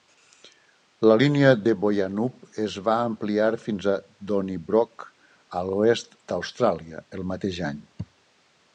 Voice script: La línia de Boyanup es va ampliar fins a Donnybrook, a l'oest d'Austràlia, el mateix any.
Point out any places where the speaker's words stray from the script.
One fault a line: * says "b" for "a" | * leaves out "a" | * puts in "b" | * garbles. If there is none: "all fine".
all fine